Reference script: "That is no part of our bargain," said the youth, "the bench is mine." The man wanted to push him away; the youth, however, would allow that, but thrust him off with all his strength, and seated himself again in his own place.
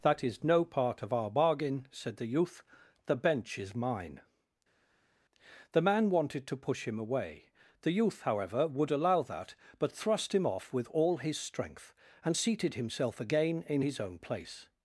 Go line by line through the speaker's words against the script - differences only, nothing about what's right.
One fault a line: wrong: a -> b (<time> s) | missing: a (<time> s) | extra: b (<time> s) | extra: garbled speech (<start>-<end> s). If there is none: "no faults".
no faults